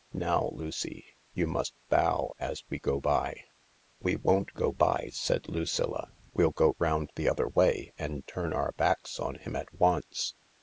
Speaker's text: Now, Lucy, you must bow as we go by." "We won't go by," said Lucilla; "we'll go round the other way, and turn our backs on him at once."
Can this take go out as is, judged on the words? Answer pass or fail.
pass